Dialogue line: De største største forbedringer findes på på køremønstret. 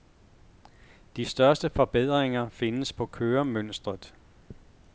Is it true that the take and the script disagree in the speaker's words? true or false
true